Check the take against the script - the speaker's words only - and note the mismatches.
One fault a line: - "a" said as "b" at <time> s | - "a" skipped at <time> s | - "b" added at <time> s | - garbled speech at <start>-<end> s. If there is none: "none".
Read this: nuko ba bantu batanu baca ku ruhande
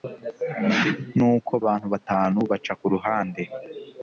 - "ba" skipped at 1.5 s